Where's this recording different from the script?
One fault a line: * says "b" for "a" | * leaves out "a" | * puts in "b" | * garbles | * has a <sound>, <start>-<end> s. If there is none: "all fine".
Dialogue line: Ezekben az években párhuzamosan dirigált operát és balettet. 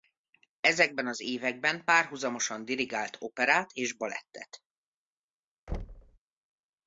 * has a thud, 5.7-6.2 s